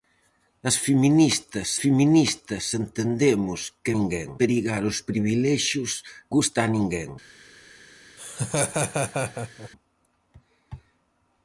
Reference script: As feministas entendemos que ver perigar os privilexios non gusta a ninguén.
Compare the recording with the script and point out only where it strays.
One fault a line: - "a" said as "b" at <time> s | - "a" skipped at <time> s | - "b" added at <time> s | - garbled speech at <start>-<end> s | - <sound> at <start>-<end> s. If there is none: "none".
- "feministas" added at 1.8 s
- "ver" said as "ninguén" at 3.9 s
- "non" skipped at 5.9 s
- laugh at 8.2-9.7 s